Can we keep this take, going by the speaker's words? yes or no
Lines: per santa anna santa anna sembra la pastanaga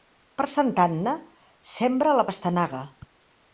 no